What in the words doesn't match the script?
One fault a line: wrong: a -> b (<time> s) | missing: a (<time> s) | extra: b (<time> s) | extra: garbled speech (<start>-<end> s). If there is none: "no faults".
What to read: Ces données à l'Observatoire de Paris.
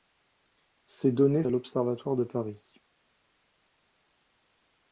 no faults